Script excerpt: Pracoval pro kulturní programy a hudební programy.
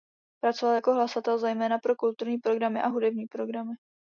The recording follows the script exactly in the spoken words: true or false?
false